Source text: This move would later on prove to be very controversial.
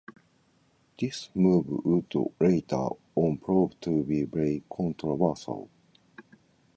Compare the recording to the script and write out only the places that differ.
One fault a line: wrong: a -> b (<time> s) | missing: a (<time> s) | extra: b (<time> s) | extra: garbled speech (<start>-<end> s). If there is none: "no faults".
no faults